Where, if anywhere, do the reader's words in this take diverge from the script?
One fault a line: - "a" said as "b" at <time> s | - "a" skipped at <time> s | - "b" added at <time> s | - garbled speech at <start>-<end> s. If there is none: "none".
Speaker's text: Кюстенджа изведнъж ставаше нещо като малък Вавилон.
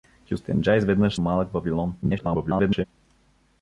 - "ставаше нещо като" skipped at 1.1 s
- garbled speech at 2.0-2.8 s